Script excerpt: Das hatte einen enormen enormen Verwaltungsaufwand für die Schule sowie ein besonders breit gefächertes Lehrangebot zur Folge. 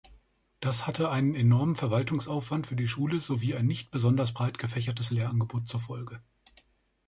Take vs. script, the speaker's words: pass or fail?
fail